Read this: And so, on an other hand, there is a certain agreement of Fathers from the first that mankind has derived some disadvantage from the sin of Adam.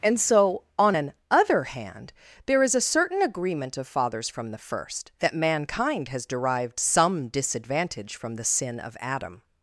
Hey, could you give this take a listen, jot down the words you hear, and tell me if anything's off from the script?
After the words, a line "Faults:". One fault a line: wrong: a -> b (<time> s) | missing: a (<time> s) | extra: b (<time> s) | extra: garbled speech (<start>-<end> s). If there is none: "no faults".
And so, on an other hand, there is a certain agreement of Fathers from the first that mankind has derived some disadvantage from the sin of Adam.
Faults:
no faults